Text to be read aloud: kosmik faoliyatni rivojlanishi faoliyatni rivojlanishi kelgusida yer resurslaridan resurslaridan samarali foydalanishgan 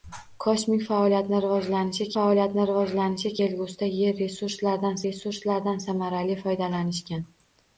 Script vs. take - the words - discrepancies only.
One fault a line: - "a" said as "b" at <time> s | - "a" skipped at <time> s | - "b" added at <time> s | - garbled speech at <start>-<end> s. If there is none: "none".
none